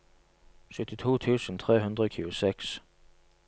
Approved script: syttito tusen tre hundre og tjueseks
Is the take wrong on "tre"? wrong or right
right